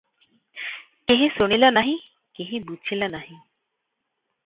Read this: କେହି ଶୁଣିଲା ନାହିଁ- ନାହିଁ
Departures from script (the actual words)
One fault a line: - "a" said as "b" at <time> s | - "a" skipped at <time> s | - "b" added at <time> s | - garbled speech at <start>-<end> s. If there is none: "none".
- "କେହି ବୁଝିଲା" added at 2.3 s